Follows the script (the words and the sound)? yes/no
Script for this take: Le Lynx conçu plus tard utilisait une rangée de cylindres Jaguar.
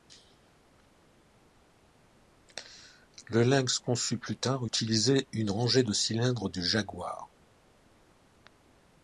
no